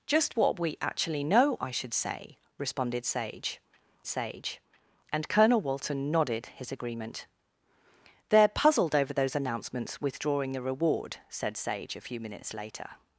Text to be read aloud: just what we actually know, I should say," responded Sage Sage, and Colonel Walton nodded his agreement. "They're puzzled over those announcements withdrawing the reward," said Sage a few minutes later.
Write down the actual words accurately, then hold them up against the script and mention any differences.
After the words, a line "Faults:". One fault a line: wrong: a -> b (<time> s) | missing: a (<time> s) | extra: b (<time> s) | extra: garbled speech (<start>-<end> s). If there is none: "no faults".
just what we actually know, I should say," responded Sage Sage, and Colonel Walton nodded his agreement. "They're puzzled over those announcements withdrawing the reward," said Sage a few minutes later.
Faults:
no faults